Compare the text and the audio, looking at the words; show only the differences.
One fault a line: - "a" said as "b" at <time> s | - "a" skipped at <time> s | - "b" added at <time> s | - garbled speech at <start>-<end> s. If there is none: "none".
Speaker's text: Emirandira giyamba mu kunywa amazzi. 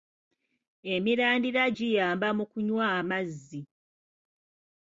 none